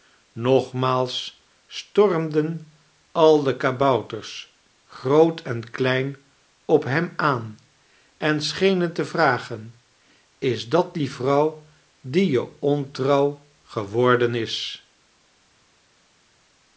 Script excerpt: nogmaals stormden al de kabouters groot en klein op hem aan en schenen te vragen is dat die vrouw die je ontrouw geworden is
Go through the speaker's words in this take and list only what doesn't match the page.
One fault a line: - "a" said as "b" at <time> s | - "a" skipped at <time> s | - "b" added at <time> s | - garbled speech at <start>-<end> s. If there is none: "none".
none